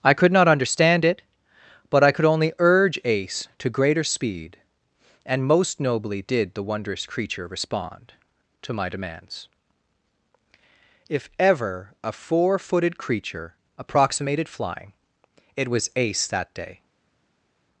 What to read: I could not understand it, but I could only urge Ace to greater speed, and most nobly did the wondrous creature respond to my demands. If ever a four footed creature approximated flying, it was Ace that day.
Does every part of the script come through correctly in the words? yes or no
yes